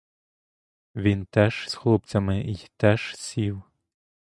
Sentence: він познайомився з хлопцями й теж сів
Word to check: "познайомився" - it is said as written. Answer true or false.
false